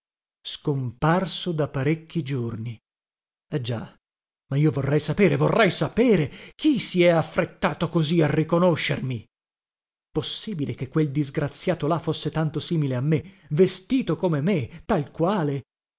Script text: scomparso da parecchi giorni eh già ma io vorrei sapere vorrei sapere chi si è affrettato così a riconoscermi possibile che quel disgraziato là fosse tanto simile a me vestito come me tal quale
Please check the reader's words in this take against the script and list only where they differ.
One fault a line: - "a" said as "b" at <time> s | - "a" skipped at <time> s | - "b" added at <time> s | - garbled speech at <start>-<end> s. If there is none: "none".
none